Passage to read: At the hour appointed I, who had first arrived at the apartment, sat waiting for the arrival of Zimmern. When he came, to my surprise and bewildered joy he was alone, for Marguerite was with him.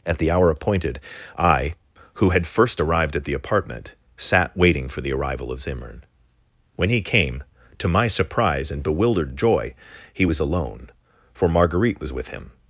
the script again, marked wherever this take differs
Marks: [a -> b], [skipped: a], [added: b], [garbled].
At the hour appointed I, who had first arrived at the apartment, sat waiting for the arrival of Zimmern. When he came, to my surprise and bewildered joy he was alone, for Marguerite was with him.